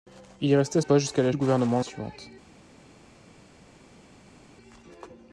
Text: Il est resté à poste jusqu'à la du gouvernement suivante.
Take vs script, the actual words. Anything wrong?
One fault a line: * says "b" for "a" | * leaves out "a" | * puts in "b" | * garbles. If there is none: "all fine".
all fine